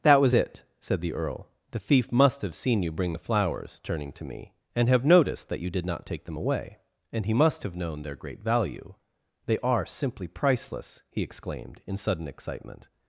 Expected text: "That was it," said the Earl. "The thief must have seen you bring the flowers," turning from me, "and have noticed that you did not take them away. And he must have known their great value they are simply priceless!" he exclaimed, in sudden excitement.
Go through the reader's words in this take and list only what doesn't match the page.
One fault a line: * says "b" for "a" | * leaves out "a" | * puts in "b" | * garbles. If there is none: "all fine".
* says "to" for "from"